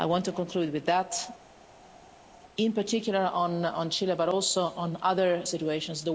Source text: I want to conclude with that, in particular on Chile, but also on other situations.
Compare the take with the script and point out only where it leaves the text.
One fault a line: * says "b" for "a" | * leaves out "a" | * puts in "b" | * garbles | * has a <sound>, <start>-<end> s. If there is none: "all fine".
all fine